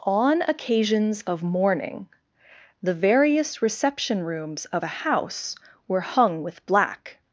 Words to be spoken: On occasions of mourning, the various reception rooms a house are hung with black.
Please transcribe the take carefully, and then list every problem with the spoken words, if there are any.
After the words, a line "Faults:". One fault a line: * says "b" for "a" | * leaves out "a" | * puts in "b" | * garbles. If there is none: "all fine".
On occasions of mourning, the various reception rooms of a house were hung with black.
Faults:
* puts in "of"
* says "were" for "are"